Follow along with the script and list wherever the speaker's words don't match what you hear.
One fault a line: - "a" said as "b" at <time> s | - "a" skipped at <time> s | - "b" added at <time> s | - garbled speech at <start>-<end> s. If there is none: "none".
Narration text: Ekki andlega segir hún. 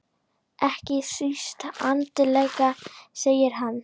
- "síst" added at 1.1 s
- "hún" said as "hann" at 3.6 s